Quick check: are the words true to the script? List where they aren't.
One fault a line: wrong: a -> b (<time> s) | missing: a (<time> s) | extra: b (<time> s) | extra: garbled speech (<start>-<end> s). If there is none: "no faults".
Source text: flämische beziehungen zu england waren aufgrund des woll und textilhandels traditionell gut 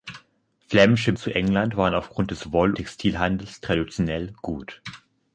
missing: beziehungen (1.1 s)
missing: und (2.7 s)